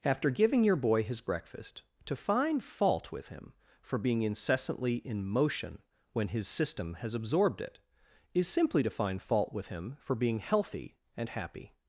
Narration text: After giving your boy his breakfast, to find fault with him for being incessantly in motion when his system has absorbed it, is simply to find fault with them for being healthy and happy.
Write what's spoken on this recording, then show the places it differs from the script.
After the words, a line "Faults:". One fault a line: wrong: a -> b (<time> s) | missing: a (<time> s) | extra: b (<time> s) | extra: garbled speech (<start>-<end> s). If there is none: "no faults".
After giving your boy his breakfast, to find fault with him for being incessantly in motion when his system has absorbed it, is simply to find fault with him for being healthy and happy.
Faults:
wrong: them -> him (9.7 s)